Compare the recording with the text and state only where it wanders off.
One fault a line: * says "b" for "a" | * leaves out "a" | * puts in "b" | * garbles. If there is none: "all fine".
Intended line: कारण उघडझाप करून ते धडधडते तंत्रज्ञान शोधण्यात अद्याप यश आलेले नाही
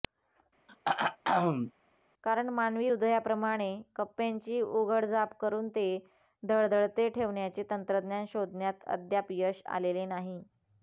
* puts in "मानवी हृदयाप्रमाणे कप्प्यांची"
* puts in "ठेवण्याचे"